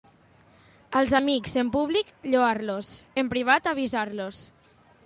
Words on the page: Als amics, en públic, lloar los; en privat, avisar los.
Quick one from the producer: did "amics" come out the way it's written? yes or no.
yes